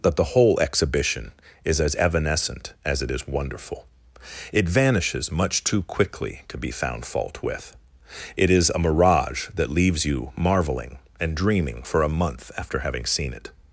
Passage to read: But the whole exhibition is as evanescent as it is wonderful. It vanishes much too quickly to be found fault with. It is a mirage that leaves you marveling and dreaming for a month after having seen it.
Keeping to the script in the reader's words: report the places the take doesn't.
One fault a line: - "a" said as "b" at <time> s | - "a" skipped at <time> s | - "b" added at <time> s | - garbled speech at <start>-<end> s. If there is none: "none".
- "But" said as "That" at 0.0 s